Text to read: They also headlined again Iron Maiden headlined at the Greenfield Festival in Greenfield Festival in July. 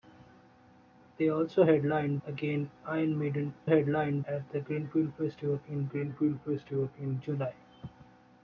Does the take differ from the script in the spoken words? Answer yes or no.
no